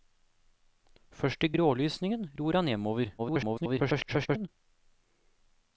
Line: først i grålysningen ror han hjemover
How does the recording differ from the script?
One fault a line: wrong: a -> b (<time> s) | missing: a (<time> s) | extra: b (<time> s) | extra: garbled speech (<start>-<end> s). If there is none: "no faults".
extra: garbled speech (3.2-4.5 s)